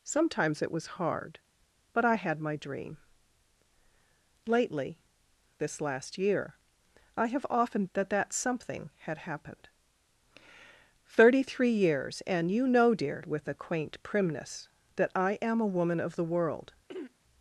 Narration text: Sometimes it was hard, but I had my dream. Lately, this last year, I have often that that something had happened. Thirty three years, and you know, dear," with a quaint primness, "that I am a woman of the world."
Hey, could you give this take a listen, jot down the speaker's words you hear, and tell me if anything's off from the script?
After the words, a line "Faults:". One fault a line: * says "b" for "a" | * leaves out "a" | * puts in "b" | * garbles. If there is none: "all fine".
Sometimes it was hard, but I had my dream. Lately, this last year, I have often that that something had happened. Thirty three years, and you know, dear," with a quaint primness, "that I am a woman of the world."
Faults:
all fine